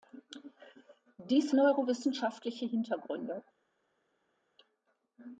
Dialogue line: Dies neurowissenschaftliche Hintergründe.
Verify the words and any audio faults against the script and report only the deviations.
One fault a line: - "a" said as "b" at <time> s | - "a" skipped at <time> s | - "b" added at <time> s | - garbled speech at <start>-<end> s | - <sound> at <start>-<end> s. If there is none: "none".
none